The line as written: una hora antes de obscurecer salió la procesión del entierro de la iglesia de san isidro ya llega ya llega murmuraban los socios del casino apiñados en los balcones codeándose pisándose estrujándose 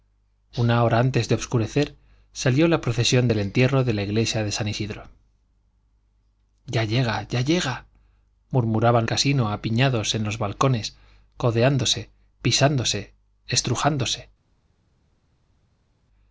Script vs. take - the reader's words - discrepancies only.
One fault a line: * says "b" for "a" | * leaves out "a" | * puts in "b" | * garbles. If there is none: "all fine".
* leaves out "los socios del"